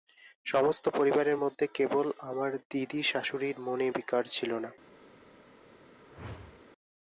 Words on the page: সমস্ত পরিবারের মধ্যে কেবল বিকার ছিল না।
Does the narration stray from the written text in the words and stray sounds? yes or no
yes